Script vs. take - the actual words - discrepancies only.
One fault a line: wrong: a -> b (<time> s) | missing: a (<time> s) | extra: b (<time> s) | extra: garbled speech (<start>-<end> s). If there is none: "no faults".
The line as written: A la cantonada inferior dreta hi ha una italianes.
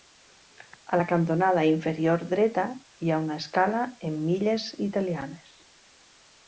extra: escala en milles (3.4 s)